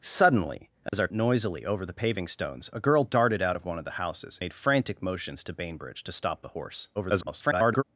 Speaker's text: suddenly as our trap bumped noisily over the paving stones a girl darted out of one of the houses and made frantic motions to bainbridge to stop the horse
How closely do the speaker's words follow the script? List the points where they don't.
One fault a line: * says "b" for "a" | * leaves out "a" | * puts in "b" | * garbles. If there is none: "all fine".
* leaves out "trap bumped"
* leaves out "and"
* garbles